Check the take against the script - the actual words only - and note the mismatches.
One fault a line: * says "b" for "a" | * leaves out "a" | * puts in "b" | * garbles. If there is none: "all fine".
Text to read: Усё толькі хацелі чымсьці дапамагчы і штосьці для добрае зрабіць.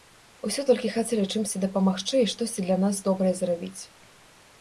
* puts in "нас"